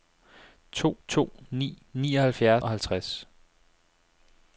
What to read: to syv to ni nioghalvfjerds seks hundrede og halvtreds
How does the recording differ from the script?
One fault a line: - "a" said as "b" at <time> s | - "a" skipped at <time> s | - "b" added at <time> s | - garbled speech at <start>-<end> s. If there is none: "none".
- "syv" skipped at 1.0 s
- "seks hundrede" skipped at 2.6 s